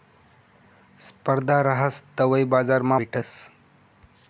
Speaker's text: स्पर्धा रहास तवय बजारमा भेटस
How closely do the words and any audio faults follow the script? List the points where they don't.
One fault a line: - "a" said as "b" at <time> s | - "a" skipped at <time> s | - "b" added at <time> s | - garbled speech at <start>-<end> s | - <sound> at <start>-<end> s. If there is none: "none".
none